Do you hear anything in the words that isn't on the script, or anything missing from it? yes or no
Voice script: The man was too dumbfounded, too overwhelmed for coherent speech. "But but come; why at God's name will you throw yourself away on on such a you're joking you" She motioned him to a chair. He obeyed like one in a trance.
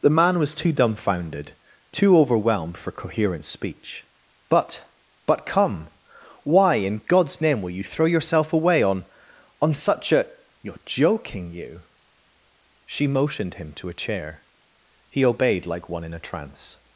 yes